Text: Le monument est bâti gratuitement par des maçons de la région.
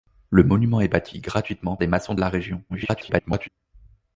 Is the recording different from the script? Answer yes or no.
yes